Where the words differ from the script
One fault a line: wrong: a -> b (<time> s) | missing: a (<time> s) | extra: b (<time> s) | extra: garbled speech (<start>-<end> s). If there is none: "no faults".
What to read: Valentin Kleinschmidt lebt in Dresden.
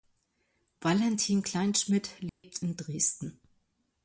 no faults